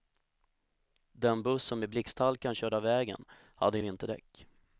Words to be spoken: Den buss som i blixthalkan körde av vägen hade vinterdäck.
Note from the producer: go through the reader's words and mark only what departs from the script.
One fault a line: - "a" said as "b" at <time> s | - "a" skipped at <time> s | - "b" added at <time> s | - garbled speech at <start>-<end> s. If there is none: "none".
none